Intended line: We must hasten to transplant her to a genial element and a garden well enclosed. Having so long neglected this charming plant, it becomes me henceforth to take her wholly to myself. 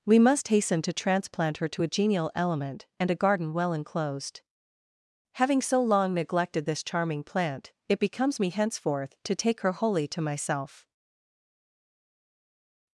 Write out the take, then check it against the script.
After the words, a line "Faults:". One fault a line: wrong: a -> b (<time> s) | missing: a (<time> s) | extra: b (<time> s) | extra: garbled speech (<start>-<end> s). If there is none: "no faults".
We must hasten to transplant her to a genial element and a garden well enclosed. Having so long neglected this charming plant, it becomes me henceforth to take her wholly to myself.
Faults:
no faults